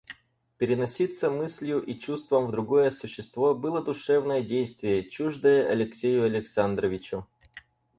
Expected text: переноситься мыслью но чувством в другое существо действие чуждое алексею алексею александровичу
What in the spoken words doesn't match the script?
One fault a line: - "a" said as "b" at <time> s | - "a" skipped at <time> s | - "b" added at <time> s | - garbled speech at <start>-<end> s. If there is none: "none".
- "но" said as "и" at 1.8 s
- "было душевное" added at 3.6 s
- "алексею" skipped at 6.2 s